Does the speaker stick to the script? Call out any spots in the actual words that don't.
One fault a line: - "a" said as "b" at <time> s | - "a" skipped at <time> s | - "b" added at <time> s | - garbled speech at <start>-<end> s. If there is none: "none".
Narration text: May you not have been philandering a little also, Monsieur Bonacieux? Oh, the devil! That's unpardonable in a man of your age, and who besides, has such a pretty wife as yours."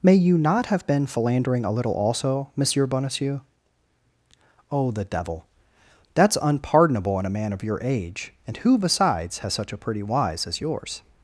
- "wife" said as "wise" at 10.0 s